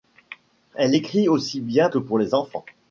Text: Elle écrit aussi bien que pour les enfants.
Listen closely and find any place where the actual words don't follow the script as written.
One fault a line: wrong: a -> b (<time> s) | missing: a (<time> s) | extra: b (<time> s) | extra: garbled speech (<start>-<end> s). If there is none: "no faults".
no faults